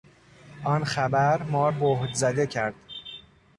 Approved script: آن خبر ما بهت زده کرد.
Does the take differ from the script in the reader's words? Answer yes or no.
no